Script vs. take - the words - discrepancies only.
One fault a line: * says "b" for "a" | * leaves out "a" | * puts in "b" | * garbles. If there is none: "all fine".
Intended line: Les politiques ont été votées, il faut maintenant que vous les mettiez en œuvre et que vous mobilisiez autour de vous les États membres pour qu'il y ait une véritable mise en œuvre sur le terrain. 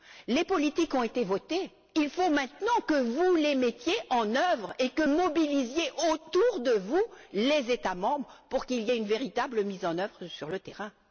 * leaves out "vous"